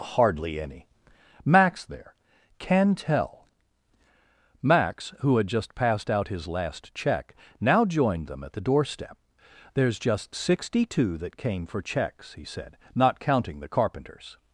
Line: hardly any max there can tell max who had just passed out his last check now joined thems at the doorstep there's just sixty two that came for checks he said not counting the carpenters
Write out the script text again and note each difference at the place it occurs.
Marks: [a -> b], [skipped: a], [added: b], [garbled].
hardly any max there can tell max who had just passed out his last check now joined [thems -> them] at the doorstep there's just sixty two that came for checks he said not counting the carpenters